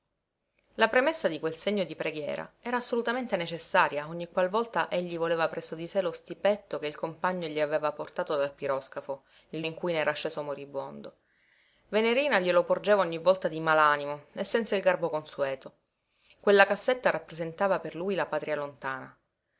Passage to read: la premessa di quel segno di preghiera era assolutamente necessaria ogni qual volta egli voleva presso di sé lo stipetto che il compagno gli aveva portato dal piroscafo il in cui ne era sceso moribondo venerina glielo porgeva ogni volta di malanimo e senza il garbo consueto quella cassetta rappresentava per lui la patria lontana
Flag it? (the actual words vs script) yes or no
no